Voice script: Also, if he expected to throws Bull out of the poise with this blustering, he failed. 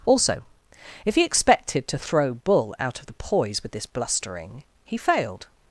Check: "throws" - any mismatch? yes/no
yes